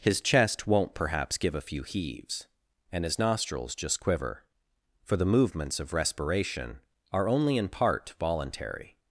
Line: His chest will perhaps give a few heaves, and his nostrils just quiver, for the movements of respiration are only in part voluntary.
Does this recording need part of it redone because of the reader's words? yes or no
yes